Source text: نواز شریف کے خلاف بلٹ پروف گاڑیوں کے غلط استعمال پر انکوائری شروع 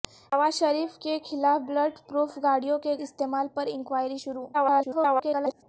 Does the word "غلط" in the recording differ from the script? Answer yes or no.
yes